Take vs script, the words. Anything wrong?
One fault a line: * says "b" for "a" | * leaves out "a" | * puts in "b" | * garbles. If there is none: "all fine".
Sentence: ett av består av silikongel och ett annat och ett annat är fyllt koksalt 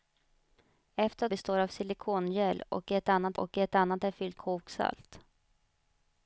all fine